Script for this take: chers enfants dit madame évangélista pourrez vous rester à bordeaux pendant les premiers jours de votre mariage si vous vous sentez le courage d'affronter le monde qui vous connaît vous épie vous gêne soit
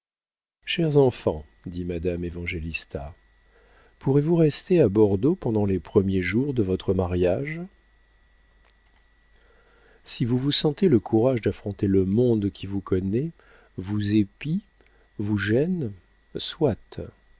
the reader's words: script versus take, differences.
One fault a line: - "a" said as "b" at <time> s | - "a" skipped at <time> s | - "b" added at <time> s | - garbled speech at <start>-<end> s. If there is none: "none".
none